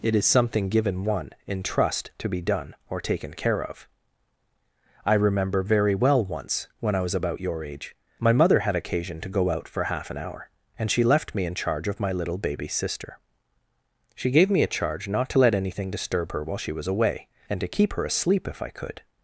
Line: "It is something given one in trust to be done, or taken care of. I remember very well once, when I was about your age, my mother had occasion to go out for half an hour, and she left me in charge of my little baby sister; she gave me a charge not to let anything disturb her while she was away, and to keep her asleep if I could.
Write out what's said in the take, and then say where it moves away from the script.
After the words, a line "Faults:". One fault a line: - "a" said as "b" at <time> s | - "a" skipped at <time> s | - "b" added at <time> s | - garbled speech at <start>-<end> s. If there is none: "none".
"It is something given one in trust to be done, or taken care of. I remember very well once, when I was about your age, my mother had occasion to go out for half an hour, and she left me in charge of my little baby sister; she gave me a charge not to let anything disturb her while she was away, and to keep her asleep if I could.
Faults:
none